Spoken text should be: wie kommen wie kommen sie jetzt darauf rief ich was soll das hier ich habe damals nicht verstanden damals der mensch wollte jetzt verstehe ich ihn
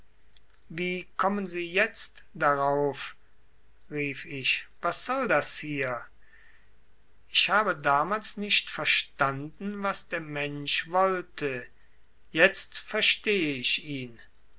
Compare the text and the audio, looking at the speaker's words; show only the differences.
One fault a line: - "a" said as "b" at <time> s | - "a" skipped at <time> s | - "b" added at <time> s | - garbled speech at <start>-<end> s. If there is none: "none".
- "wie kommen" skipped at 1.4 s
- "damals" said as "was" at 9.8 s